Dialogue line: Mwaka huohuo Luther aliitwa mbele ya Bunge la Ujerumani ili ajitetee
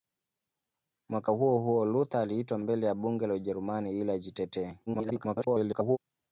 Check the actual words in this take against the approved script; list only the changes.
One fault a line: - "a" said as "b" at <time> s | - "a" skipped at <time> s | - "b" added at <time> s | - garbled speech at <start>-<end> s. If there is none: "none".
- garbled speech at 4.9-6.0 s